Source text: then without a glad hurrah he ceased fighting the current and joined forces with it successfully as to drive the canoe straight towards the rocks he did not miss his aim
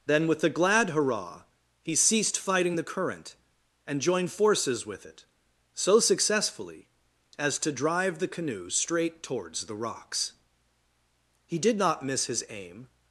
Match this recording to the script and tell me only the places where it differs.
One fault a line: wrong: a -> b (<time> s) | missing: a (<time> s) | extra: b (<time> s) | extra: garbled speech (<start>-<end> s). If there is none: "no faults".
wrong: without -> with (0.3 s)
extra: so (5.7 s)